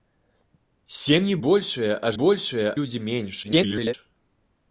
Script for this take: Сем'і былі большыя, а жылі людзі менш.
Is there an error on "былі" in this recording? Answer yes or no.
yes